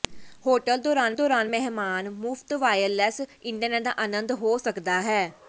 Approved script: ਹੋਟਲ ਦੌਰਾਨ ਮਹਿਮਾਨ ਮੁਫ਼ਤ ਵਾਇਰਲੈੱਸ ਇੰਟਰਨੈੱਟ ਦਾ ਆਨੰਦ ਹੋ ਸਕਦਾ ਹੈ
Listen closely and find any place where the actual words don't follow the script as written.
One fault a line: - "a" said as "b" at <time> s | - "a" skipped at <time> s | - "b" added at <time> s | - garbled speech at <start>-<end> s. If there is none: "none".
- "ਦੌਰਾਨ" added at 1.1 s